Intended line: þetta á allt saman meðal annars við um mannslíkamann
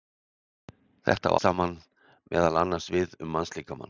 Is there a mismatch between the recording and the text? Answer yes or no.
yes